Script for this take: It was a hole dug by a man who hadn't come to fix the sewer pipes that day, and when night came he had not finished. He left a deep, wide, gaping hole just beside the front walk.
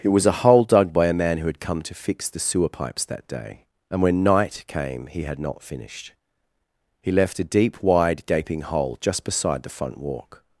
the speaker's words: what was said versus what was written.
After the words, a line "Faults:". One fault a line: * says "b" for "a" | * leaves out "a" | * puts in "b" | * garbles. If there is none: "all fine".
It was a hole dug by a man who had come to fix the sewer pipes that day, and when night came he had not finished. He left a deep, wide, gaping hole just beside the front walk.
Faults:
* says "had" for "hadn't"